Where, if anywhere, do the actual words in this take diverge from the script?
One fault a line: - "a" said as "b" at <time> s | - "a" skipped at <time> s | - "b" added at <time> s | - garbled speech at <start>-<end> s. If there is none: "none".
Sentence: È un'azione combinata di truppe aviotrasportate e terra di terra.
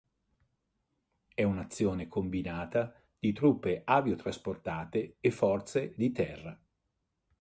- "terra" said as "forze" at 5.3 s